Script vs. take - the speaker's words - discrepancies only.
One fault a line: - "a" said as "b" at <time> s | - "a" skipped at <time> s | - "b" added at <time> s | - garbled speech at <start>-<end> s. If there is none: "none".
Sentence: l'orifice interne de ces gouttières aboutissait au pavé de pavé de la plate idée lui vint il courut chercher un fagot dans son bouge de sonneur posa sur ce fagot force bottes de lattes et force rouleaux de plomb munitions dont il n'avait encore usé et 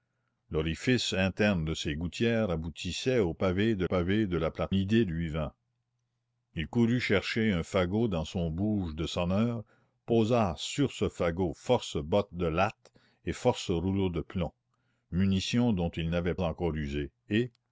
none